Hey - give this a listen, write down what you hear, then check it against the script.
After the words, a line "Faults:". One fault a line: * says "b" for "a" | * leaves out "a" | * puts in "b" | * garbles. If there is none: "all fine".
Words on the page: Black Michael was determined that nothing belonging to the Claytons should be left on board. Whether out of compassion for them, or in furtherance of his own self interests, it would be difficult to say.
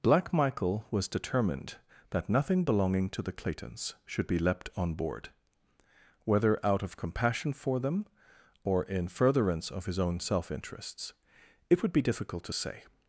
Black Michael was determined that nothing belonging to the Claytons should be leapt on board. Whether out of compassion for them, or in furtherance of his own self interests, it would be difficult to say.
Faults:
* says "leapt" for "left"